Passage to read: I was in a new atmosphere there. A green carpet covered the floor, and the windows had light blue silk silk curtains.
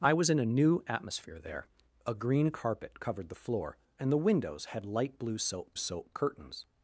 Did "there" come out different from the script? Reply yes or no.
no